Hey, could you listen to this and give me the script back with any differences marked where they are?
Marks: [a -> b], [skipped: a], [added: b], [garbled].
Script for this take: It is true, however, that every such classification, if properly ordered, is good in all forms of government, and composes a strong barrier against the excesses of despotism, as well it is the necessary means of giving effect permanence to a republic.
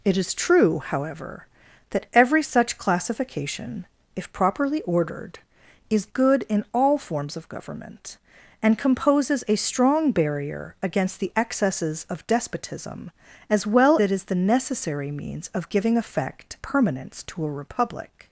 It is true, however, that every such classification, if properly ordered, is good in all forms of government, and composes a strong barrier against the excesses of despotism, as well it is the necessary means of giving effect permanence to a republic.